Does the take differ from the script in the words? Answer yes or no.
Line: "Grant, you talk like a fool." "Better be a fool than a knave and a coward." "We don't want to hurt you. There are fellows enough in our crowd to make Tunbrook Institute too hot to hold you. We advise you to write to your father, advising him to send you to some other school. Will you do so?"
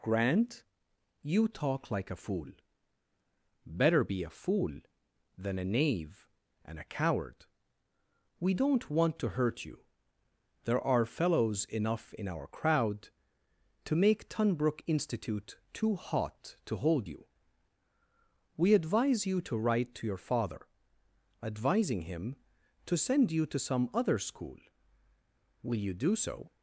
no